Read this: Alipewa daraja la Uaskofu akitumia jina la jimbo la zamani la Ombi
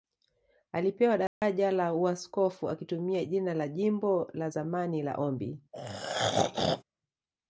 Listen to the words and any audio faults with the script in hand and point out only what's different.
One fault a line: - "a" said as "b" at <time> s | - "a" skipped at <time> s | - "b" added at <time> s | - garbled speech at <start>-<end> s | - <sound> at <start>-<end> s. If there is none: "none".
- dropout at 1.3-1.4 s
- throat clearing at 5.7-6.8 s